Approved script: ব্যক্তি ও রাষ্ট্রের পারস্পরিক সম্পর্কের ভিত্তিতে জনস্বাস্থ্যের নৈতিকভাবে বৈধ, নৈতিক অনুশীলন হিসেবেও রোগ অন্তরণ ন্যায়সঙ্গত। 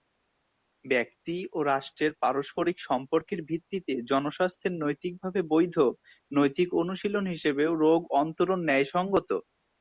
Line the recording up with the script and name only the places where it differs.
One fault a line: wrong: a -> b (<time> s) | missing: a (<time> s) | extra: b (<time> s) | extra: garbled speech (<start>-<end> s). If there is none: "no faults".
no faults